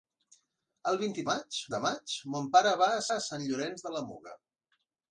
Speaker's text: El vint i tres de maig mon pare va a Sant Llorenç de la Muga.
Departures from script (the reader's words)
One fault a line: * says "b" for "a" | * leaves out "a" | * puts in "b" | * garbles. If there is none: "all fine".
* says "maig" for "tres"
* puts in "a"